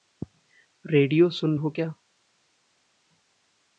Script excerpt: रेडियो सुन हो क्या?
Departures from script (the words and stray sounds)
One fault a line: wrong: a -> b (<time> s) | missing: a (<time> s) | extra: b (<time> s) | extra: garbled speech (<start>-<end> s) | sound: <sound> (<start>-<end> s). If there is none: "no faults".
no faults